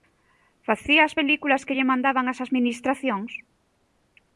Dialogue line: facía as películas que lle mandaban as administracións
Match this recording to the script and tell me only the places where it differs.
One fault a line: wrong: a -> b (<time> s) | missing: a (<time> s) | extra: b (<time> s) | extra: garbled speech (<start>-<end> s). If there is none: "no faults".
no faults